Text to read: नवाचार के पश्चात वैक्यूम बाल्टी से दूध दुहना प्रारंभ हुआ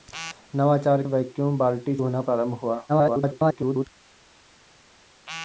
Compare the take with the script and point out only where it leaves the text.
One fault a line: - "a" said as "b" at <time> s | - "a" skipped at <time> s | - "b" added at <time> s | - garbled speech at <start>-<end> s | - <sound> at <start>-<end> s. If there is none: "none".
- "के पश्चात" skipped at 1.0 s
- "से दूध" skipped at 2.0 s
- garbled speech at 2.9-3.9 s